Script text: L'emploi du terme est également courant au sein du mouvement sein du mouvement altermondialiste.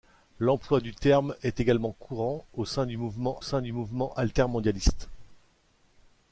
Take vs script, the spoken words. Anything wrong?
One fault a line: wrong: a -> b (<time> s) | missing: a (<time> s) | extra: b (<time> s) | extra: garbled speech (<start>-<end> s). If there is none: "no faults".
no faults